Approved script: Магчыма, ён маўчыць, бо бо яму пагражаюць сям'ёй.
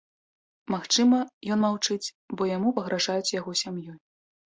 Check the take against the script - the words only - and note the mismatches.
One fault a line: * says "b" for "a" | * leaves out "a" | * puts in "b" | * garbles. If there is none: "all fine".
* leaves out "бо"
* puts in "яго"